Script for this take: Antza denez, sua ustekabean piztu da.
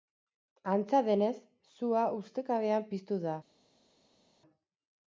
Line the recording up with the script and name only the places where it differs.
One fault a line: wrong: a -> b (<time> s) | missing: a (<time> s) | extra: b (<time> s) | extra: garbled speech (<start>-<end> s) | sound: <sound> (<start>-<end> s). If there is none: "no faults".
no faults